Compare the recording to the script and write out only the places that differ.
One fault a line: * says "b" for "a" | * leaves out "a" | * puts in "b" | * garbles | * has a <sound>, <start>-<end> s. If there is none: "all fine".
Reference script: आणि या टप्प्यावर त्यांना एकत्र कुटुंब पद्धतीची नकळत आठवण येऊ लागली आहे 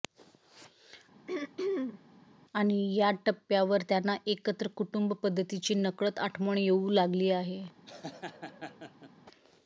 * has a throat clearing, 1.3-2.1 s
* has a laugh, 7.9-9.1 s